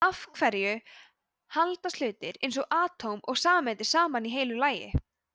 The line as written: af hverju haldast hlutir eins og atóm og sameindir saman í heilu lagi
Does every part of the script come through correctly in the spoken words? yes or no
yes